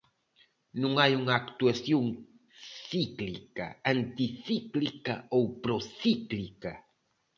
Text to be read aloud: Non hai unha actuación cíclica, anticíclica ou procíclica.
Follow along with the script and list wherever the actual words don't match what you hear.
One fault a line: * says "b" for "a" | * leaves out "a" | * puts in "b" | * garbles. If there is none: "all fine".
all fine